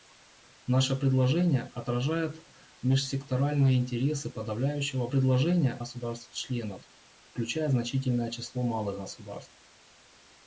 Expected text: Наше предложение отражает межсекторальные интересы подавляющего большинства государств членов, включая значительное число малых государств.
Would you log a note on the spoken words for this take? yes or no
yes